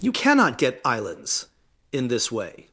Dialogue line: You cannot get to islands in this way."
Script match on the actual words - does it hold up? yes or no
no